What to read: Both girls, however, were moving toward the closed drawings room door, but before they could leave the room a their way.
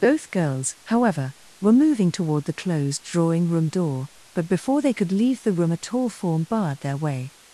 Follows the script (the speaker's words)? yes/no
no